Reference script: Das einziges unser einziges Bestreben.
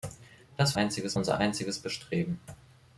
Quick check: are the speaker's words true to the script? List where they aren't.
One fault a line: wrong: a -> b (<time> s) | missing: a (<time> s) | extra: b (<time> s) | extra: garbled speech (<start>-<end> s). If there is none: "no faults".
no faults